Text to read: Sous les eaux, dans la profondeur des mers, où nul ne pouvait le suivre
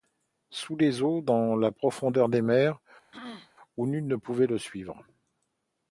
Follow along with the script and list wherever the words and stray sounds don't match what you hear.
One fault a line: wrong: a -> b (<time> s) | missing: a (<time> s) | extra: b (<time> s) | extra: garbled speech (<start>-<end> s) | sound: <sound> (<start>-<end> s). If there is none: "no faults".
sound: throat clearing (3.1-3.5 s)